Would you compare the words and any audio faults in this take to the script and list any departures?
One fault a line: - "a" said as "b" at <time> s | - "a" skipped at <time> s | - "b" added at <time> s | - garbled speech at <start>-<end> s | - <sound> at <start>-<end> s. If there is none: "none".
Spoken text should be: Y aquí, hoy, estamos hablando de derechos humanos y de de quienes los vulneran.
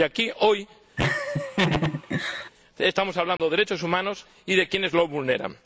- laugh at 1.0-2.5 s
- dropout at 3.4-3.4 s
- "de" skipped at 4.7 s